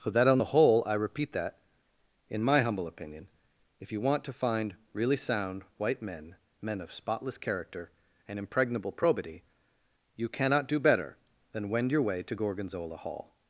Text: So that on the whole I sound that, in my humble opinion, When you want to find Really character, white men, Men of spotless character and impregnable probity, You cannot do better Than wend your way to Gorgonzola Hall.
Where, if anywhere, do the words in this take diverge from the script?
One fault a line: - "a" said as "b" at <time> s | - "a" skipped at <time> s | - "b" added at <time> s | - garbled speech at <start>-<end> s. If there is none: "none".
- "sound" said as "repeat" at 0.9 s
- "When" said as "If" at 3.8 s
- "character" said as "sound" at 5.2 s